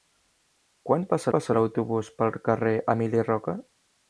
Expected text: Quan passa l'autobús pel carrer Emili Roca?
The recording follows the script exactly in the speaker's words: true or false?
false